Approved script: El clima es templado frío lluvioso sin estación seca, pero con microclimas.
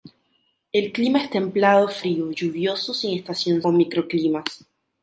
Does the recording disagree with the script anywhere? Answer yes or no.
yes